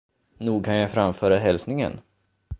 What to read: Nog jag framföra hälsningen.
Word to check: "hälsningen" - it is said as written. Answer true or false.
true